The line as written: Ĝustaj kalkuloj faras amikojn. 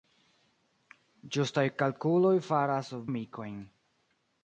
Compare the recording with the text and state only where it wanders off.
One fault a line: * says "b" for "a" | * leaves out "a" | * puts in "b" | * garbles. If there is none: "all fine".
all fine